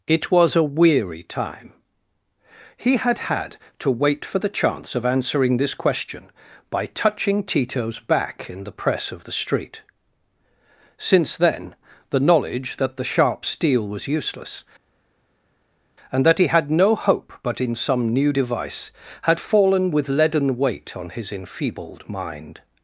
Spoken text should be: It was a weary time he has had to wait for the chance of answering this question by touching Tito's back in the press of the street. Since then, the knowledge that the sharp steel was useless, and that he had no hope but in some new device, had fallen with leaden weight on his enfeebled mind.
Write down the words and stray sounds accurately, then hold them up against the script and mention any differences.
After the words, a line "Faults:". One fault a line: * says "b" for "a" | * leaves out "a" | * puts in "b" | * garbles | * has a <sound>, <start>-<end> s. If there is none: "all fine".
It was a weary time he had had to wait for the chance of answering this question by touching Tito's back in the press of the street. Since then, the knowledge that the sharp steel was useless, and that he had no hope but in some new device, had fallen with leaden weight on his enfeebled mind.
Faults:
* says "had" for "has"